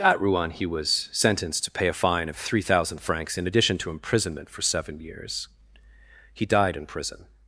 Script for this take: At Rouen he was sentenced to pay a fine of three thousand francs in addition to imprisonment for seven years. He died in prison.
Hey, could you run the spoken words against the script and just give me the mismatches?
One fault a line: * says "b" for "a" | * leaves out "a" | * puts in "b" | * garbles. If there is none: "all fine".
all fine